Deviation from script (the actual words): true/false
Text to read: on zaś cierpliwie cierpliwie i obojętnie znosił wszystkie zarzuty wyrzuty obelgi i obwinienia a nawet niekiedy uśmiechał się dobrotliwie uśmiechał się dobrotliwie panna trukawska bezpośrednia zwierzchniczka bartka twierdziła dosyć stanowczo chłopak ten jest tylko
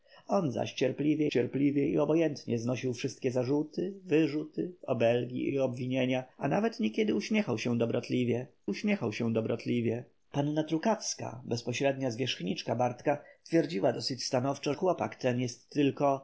false